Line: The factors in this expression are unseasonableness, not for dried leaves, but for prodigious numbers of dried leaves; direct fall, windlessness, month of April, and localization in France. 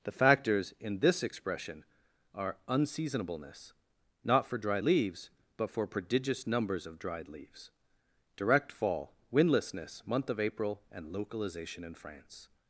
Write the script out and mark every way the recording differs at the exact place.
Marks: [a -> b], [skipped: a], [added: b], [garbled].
The factors in this expression are unseasonableness, not for dried leaves, but for prodigious numbers of dried leaves; direct fall, windlessness, month of April, and localization in France.